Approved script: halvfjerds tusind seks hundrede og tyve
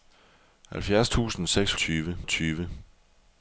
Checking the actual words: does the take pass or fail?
fail